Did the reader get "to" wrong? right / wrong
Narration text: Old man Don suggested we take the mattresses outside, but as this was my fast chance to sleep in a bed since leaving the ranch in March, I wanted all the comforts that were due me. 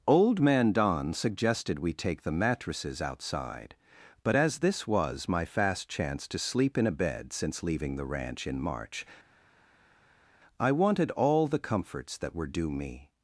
right